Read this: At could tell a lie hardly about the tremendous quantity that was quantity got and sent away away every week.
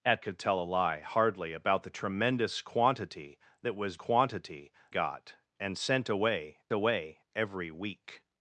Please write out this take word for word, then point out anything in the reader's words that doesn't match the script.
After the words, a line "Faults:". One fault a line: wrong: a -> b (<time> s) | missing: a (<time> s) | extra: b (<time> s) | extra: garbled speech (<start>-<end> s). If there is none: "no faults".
At could tell a lie hardly about the tremendous quantity that was quantity got and sent away away every week.
Faults:
no faults